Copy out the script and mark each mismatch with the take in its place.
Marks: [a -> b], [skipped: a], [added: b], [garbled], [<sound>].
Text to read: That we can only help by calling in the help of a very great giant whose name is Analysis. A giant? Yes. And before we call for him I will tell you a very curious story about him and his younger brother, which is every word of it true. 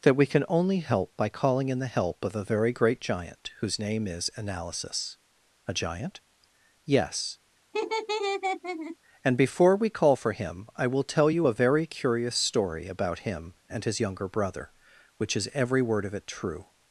That we can only help by calling in the help of a very great giant whose name is Analysis. A giant? Yes. [laugh] And before we call for him I will tell you a very curious story about him and his younger brother, which is every word of it true.